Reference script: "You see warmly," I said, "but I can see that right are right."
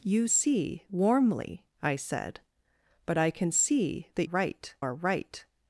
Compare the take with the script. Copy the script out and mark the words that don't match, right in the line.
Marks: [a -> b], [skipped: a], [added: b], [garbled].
"You see warmly," I said, "but I can see that right are right."